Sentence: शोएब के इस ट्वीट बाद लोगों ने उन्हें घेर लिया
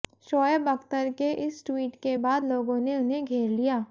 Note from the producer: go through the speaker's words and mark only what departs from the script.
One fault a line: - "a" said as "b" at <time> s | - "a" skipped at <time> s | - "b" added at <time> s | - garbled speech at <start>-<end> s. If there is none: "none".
- "अख्तर" added at 0.7 s
- "के" added at 2.0 s